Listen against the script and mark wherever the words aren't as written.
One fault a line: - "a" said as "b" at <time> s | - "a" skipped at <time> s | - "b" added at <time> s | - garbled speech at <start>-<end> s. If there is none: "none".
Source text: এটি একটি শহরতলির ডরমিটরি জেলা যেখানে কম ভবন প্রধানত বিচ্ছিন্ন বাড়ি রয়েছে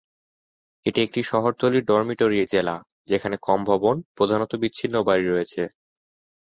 none